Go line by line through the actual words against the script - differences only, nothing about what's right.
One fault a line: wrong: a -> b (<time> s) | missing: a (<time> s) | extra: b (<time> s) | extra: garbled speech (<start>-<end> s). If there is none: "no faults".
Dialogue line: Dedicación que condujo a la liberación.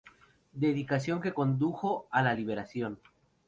no faults